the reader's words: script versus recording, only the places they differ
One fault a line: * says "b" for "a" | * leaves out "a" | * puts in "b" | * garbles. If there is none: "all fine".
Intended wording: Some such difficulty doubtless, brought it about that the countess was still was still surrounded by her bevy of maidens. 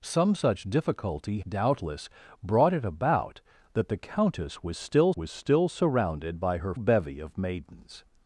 all fine